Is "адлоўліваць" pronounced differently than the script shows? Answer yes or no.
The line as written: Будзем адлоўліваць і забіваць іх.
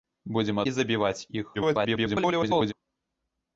yes